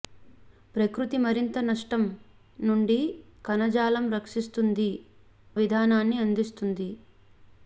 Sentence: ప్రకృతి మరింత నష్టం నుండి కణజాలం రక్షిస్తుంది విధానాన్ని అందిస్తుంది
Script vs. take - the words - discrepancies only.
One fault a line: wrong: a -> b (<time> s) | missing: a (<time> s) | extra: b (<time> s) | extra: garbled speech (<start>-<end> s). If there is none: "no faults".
no faults